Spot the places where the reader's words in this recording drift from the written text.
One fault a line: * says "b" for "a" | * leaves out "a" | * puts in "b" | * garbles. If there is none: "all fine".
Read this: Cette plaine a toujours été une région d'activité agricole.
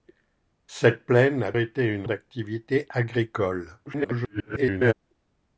* leaves out "toujours"
* leaves out "région"
* garbles